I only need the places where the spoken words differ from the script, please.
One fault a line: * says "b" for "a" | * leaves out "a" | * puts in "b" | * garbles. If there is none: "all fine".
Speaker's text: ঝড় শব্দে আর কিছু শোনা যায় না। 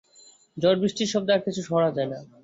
* puts in "বৃষ্টির"